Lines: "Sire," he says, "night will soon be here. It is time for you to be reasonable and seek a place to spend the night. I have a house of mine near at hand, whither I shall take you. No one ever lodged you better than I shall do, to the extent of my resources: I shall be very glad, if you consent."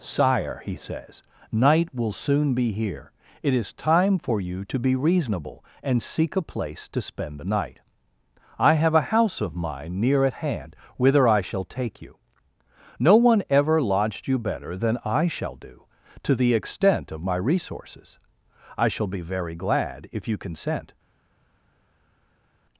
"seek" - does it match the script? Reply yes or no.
yes